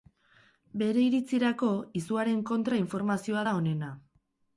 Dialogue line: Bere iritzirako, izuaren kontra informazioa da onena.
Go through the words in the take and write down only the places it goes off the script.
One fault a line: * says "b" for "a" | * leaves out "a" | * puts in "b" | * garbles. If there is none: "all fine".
all fine